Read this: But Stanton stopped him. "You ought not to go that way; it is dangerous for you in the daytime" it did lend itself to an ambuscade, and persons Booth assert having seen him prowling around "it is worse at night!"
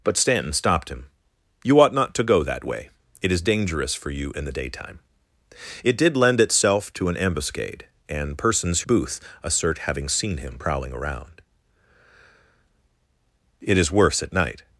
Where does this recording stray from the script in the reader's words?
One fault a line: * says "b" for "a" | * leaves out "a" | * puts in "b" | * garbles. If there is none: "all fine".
all fine